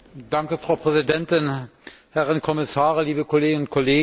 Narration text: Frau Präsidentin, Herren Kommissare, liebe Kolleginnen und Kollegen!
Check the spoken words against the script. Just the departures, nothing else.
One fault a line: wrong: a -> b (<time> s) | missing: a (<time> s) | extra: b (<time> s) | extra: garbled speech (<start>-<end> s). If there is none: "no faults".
no faults